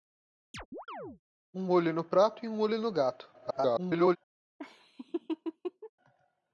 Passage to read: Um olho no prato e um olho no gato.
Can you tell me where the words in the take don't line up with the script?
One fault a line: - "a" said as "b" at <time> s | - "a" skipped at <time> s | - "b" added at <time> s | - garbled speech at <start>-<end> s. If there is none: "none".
- garbled speech at 3.3-4.2 s